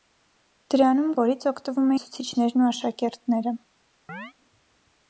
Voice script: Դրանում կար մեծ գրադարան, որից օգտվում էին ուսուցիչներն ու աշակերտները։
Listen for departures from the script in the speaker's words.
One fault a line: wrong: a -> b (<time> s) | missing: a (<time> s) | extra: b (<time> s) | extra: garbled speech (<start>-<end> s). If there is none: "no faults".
missing: կար մեծ գրադարան (1.1 s)
missing: էին (1.9 s)